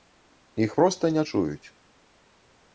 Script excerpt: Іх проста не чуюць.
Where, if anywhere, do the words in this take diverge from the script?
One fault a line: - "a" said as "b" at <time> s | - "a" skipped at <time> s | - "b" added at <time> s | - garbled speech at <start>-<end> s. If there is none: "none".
none